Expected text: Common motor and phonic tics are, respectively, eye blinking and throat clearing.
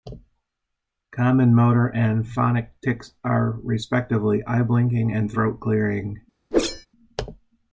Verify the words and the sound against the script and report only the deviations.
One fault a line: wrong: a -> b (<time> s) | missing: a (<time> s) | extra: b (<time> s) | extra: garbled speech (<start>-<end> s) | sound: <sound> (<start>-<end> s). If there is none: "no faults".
sound: whoosh (6.5-6.9 s)